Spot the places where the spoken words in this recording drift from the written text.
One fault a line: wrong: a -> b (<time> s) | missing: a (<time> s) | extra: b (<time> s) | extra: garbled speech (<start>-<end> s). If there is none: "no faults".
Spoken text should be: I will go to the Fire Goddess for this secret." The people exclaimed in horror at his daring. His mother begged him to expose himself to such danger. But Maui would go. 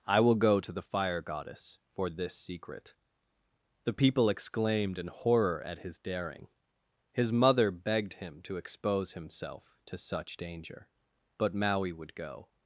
no faults